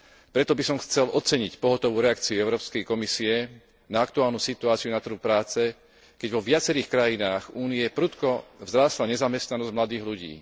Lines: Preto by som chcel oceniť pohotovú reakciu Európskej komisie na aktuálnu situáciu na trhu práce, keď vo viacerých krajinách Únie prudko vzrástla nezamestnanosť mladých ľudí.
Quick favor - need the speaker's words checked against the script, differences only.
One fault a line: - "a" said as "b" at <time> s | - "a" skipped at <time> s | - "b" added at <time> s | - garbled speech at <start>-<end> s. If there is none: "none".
none